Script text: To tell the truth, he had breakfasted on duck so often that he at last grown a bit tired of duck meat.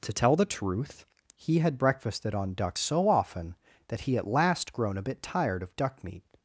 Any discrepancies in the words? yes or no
no